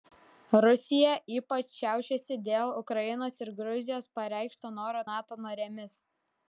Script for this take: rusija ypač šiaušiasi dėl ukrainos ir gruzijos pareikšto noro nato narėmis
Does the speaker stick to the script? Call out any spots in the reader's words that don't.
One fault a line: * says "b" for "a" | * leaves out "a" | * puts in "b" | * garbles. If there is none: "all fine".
all fine